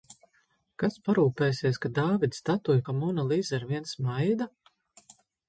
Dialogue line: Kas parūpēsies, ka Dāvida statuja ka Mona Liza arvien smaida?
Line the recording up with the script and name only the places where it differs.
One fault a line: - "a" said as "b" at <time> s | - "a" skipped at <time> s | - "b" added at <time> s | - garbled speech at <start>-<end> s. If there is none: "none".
none